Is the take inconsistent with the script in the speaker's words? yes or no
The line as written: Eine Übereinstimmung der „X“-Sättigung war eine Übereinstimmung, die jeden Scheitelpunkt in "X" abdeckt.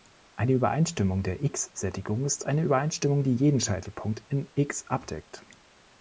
yes